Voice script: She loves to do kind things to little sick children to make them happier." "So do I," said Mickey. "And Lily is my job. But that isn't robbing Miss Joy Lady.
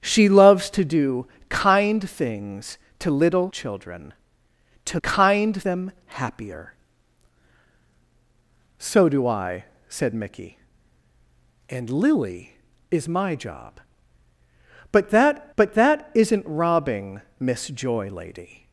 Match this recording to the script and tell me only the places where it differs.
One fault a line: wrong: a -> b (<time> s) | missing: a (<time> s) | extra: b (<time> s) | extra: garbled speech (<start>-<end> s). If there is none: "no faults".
missing: sick (3.5 s)
wrong: make -> kind (5.0 s)
extra: but that (15.6 s)